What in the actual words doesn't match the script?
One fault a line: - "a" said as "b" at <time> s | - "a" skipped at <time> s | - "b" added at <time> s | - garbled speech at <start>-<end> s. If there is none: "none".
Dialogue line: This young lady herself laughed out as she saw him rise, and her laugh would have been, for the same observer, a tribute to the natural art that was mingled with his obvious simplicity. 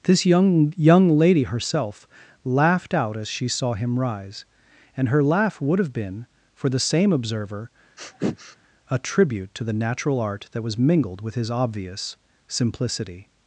- "young" added at 0.8 s